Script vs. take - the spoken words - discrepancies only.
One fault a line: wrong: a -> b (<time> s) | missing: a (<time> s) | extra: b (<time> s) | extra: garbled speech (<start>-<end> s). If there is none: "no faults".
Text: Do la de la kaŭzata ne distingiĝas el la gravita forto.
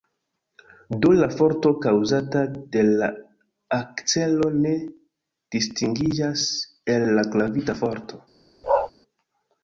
extra: forto kaŭzata (1.4 s)
wrong: kaŭzata -> akcelo (3.8 s)